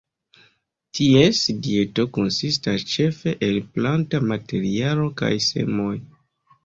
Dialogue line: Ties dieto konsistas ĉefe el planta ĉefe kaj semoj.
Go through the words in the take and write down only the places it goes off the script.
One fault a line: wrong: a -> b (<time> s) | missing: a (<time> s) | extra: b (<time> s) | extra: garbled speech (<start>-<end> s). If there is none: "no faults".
wrong: ĉefe -> materialo (4.3 s)